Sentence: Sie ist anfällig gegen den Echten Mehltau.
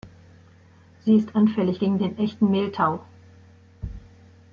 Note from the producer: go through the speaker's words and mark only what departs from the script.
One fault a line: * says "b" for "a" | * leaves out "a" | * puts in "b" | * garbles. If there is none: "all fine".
all fine